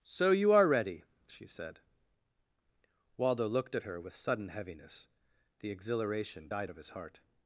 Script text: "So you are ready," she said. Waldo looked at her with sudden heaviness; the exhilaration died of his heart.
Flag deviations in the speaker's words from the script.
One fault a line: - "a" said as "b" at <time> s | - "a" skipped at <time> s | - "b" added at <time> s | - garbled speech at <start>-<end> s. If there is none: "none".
none